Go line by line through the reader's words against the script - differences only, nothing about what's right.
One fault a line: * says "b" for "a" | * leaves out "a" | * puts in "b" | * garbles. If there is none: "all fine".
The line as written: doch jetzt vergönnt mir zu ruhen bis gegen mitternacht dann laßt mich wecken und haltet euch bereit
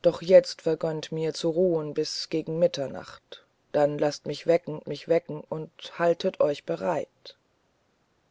* puts in "mich wecken"